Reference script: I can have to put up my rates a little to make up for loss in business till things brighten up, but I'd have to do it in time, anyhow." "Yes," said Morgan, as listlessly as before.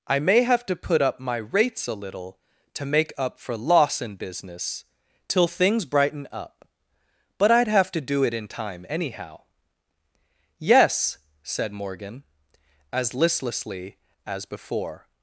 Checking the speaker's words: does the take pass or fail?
fail